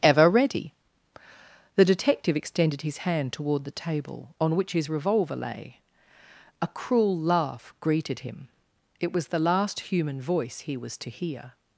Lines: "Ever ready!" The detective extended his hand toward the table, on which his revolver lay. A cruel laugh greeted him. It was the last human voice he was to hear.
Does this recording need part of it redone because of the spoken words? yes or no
no